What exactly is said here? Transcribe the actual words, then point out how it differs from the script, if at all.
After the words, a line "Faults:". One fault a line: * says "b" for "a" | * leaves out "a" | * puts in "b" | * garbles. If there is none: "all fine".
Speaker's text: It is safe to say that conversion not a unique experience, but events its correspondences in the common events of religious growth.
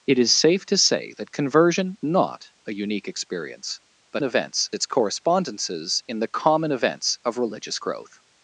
It is safe to say that conversion not a unique experience, but events its correspondences in the common events of religious growth.
Faults:
all fine